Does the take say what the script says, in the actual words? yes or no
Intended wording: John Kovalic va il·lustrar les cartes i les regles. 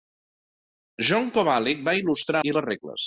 no